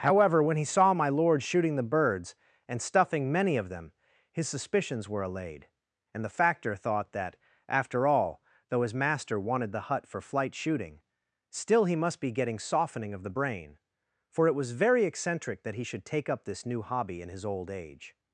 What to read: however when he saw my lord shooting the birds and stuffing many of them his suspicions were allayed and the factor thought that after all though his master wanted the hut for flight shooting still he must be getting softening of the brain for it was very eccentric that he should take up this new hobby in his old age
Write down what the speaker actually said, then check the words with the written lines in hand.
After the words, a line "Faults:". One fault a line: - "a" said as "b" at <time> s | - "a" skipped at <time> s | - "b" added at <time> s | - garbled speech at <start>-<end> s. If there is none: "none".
however when he saw my lord shooting the birds and stuffing many of them his suspicions were allayed and the factor thought that after all though his master wanted the hut for flight shooting still he must be getting softening of the brain for it was very eccentric that he should take up this new hobby in his old age
Faults:
none